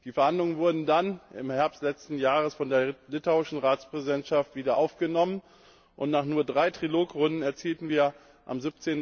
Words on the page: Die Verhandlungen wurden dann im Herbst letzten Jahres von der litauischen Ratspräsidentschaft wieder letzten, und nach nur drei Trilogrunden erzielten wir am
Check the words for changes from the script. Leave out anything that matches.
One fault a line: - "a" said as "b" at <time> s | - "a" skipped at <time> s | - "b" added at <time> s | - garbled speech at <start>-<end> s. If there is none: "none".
- "letzten" said as "aufgenommen" at 4.7 s